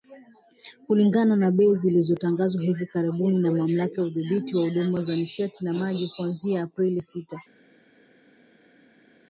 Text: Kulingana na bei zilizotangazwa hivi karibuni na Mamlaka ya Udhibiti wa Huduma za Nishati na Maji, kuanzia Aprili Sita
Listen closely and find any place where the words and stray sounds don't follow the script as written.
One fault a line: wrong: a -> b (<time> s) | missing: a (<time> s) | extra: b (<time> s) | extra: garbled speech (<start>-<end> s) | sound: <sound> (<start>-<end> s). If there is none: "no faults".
no faults